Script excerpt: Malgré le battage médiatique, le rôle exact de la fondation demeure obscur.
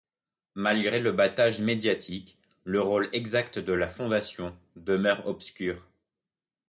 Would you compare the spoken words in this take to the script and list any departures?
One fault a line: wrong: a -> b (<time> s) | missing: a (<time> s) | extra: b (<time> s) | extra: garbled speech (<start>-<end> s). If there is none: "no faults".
no faults